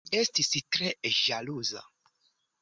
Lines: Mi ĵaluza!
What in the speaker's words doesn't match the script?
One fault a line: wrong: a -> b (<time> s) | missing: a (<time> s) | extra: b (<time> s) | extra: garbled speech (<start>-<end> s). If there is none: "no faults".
extra: estis tre (0.2 s)